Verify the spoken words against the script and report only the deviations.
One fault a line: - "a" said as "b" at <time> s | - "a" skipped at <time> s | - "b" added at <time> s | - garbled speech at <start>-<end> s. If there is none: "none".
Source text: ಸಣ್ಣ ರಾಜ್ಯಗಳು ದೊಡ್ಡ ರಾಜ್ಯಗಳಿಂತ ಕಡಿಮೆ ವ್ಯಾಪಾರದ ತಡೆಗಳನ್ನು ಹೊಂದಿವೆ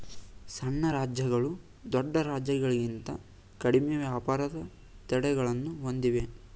none